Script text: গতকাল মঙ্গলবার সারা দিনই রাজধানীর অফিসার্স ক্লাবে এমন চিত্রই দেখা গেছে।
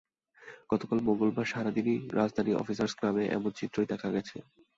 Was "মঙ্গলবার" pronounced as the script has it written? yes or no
yes